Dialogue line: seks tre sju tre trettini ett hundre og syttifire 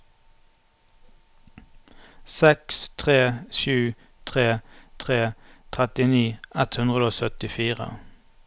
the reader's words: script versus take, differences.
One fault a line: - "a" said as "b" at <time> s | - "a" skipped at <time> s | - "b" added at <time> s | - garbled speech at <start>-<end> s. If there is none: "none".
- "tre" added at 5.0 s